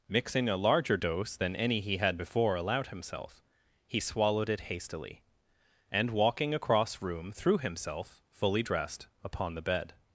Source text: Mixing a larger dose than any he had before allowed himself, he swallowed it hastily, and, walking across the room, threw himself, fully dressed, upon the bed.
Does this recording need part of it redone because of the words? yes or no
yes